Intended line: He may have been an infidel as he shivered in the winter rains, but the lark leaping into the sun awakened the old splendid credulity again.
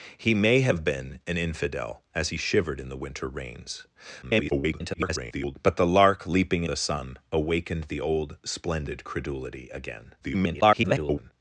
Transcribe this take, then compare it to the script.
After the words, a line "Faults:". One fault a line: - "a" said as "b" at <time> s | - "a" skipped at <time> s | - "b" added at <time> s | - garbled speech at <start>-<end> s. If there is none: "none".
He may have been an infidel as he shivered in the winter rains, [garbled] but the lark leaping the sun awakened the old splendid credulity again. [garbled]
Faults:
- garbled speech at 4.2-5.6 s
- "into" skipped at 6.6 s
- garbled speech at 10.2-11.3 s